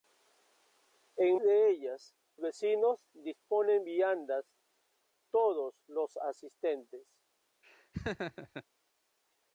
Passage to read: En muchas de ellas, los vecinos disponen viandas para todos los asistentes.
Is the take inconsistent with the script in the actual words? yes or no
yes